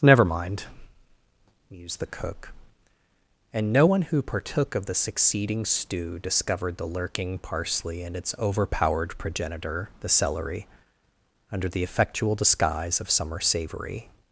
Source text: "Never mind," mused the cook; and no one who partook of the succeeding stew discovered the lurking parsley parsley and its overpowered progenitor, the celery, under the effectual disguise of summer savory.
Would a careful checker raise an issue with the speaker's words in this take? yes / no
yes